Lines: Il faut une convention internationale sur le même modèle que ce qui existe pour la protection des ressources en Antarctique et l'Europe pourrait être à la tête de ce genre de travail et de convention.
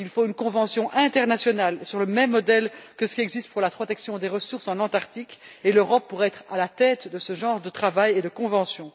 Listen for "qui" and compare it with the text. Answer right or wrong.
right